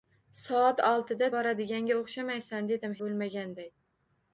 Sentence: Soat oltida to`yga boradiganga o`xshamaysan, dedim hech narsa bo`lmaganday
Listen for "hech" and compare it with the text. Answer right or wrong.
wrong